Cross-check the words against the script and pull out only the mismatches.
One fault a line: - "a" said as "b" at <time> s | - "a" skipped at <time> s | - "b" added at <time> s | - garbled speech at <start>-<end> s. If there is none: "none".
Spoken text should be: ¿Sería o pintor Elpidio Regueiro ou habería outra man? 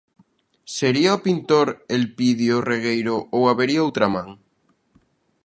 none